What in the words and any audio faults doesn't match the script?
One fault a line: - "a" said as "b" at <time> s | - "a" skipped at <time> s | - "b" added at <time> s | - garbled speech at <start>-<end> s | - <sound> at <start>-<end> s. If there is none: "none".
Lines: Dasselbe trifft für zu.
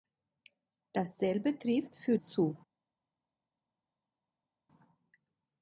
none